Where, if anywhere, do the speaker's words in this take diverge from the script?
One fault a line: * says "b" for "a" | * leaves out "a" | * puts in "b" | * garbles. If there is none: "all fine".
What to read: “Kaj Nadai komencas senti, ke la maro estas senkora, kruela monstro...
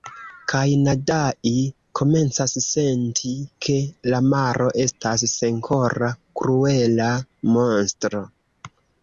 all fine